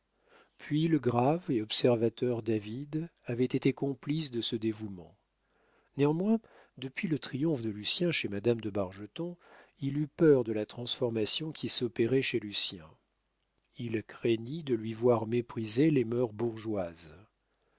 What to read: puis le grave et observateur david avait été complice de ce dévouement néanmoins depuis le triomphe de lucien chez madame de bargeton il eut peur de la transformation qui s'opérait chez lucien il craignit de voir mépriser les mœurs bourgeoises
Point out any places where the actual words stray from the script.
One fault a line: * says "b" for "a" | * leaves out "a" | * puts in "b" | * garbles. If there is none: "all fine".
* puts in "lui"